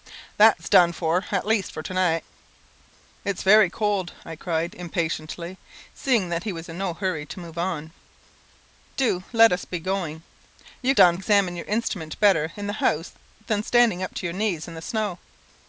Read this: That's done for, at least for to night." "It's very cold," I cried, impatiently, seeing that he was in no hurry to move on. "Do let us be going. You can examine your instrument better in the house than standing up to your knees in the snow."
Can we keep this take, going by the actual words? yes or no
no